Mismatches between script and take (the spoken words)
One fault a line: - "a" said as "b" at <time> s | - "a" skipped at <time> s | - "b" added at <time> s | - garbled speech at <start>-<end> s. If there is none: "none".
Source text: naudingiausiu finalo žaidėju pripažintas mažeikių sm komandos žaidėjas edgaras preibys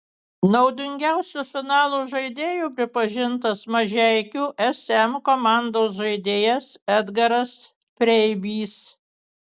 none